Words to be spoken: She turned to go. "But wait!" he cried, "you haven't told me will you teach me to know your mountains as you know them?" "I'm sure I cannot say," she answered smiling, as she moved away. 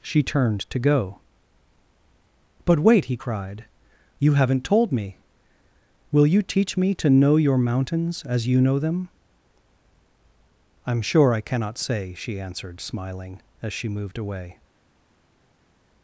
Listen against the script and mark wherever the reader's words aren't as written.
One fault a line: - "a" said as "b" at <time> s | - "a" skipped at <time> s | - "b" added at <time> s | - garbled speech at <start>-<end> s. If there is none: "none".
none